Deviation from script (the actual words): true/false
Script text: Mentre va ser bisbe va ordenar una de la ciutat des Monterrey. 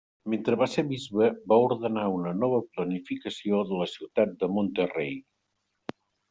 true